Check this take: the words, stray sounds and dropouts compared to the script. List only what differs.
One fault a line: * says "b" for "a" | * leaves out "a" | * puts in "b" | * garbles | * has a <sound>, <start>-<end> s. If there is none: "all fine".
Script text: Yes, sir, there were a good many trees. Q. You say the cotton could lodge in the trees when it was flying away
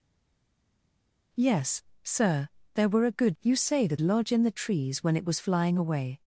* leaves out "many trees Q"
* leaves out "cotton could"